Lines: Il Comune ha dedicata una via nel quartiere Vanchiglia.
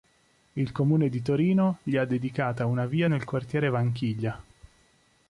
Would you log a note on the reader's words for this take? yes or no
yes